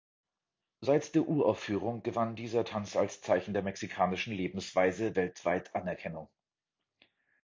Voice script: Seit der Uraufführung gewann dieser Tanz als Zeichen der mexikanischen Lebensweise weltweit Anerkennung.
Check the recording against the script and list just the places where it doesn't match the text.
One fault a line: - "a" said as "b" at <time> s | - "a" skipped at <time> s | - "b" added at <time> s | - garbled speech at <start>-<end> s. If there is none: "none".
none